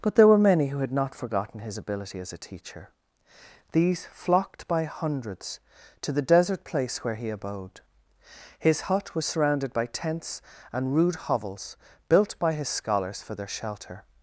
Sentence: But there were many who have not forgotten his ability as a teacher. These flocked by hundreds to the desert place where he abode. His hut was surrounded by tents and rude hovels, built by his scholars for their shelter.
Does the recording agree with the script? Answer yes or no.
no